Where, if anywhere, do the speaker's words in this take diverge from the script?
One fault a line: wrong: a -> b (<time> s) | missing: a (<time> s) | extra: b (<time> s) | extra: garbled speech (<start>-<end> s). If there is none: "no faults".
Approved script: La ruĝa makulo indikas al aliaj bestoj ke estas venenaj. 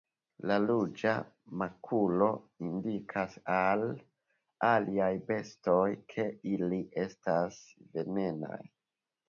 extra: ili (6.6 s)